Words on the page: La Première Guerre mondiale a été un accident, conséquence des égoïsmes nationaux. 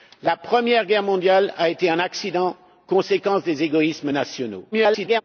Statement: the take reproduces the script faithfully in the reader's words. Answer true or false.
false